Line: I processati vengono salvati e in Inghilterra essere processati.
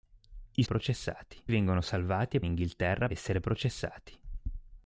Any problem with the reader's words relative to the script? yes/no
no